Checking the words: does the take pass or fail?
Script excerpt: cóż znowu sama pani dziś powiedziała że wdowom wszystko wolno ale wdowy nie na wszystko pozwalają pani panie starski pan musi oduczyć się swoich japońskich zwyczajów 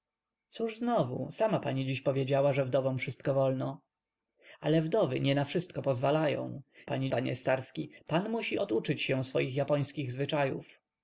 pass